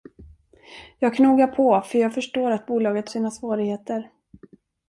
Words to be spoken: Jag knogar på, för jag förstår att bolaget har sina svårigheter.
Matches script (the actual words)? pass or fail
fail